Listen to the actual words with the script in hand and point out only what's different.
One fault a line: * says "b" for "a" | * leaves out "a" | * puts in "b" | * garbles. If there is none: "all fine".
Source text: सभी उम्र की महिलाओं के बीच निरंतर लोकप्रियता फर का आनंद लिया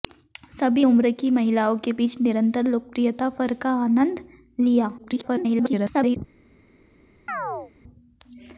* garbles